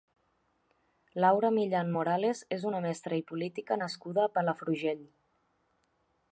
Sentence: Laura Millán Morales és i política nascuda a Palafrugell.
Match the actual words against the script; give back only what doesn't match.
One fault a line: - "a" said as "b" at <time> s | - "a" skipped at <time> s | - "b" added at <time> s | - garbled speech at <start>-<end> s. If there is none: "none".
- "una mestra" added at 2.7 s